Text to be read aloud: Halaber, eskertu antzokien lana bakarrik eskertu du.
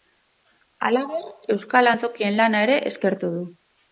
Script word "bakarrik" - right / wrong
wrong